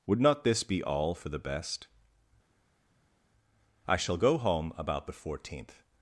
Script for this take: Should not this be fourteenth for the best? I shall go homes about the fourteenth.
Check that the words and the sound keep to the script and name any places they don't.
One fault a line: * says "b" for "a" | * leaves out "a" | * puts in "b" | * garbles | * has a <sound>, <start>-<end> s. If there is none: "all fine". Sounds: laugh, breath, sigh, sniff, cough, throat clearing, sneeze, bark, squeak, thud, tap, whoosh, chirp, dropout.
* says "Would" for "Should"
* says "all" for "fourteenth"
* says "home" for "homes"